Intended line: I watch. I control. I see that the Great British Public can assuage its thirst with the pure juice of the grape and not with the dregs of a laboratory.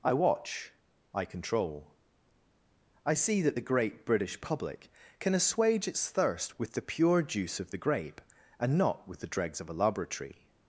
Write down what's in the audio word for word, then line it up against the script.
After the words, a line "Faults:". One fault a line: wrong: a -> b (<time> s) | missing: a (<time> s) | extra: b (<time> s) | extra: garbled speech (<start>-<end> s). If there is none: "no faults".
I watch. I control. I see that the Great British Public can assuage its thirst with the pure juice of the grape and not with the dregs of a laboratory.
Faults:
no faults